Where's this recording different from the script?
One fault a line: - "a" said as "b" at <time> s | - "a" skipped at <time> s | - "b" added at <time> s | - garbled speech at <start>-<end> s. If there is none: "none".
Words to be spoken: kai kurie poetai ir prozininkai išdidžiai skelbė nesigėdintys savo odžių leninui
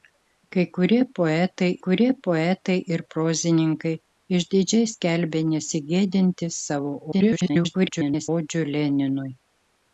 - "kurie poetai" added at 1.8 s
- garbled speech at 7.1-8.3 s